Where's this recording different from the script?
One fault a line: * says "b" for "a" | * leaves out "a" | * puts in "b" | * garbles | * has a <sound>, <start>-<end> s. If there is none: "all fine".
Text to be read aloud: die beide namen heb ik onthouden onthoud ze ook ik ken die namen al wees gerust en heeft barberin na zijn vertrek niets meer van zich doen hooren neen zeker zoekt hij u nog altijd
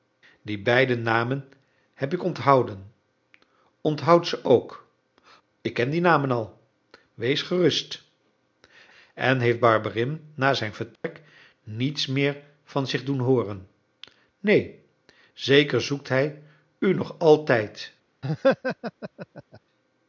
* has a dropout, 11.0-11.0 s
* has a laugh, 18.2-19.6 s